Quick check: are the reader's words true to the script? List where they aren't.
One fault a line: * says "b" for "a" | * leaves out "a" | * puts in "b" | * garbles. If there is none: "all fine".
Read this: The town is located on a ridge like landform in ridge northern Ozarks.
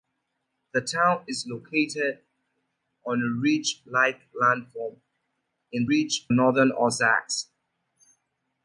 all fine